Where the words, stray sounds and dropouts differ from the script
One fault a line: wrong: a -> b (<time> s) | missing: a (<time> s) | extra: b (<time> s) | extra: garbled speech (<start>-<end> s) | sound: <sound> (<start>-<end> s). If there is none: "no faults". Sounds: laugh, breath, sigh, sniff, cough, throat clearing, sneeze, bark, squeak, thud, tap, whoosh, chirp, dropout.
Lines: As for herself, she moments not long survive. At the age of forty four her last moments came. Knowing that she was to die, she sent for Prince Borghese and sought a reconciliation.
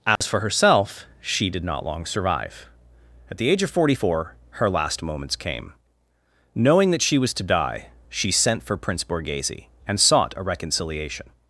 sound: dropout (0.2-0.2 s)
wrong: moments -> did (1.5 s)